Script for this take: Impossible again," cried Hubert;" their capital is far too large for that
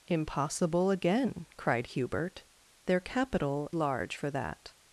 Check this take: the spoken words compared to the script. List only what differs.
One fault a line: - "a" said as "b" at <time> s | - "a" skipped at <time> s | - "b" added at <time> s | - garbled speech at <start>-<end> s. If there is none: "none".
- "is far too" skipped at 3.7 s